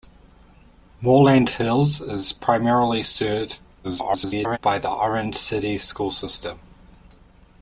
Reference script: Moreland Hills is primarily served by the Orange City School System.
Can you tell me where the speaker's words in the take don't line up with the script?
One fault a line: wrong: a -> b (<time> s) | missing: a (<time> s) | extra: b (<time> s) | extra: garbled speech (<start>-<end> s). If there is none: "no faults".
extra: garbled speech (3.8-4.6 s)